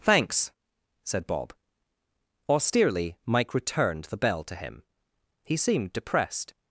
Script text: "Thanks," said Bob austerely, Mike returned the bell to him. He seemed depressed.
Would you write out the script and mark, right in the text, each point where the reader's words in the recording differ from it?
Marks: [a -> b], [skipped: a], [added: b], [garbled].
"Thanks," said Bob austerely, Mike returned the bell to him. He seemed depressed.